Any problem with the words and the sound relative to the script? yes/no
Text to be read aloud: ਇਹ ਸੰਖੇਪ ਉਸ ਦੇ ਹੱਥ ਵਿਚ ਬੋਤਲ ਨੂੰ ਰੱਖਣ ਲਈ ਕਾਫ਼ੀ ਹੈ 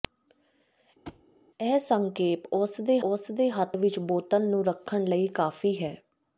yes